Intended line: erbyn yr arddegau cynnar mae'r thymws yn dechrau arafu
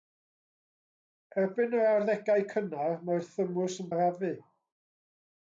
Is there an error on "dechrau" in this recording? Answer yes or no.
yes